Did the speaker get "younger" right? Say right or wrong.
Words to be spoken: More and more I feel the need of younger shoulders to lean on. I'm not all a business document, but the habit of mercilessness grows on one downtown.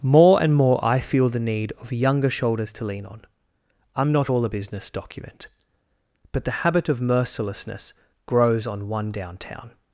right